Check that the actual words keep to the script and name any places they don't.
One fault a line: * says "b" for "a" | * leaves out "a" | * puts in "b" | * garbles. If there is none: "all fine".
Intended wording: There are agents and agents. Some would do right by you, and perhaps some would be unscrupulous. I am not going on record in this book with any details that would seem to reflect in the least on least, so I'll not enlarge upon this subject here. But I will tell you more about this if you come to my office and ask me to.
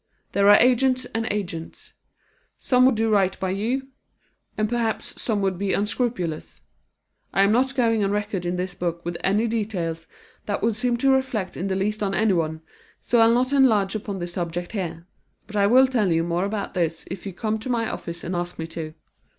* says "anyone" for "least"